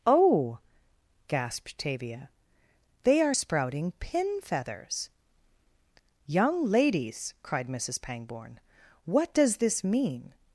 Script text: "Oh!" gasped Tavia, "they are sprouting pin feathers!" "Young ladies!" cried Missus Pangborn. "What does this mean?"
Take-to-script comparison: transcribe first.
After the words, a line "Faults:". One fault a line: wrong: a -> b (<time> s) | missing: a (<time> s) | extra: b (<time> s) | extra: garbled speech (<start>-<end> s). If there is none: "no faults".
"Oh!" gasped Tavia, "they are sprouting pin feathers!" "Young ladies!" cried Missus Pangborn. "What does this mean?"
Faults:
no faults